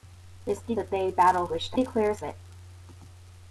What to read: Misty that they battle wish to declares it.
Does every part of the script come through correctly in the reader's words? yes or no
yes